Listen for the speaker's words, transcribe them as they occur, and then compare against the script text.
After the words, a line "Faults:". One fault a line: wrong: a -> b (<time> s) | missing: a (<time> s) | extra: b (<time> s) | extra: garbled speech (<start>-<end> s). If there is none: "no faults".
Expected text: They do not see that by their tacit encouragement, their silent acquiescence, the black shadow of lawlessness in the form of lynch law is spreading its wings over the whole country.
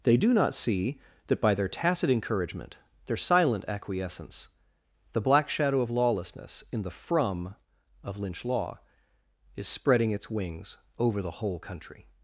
They do not see that by their tacit encouragement, their silent acquiescence, the black shadow of lawlessness in the from of lynch law is spreading its wings over the whole country.
Faults:
wrong: form -> from (6.9 s)